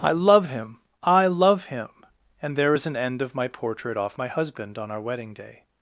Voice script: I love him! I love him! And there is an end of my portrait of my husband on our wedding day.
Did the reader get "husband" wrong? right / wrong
right